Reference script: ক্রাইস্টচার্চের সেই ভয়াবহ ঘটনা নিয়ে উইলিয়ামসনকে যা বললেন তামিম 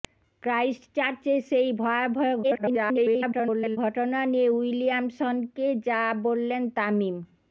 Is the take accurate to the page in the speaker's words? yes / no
no